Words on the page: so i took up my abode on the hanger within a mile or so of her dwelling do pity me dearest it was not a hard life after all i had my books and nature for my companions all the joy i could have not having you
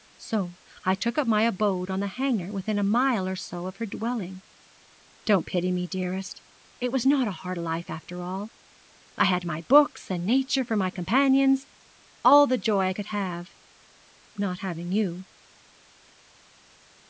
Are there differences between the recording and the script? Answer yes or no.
yes